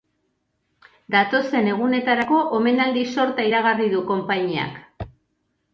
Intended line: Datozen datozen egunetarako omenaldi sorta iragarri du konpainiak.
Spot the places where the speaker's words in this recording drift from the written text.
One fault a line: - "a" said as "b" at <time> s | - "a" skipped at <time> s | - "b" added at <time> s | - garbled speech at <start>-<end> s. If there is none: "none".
- "datozen" skipped at 1.7 s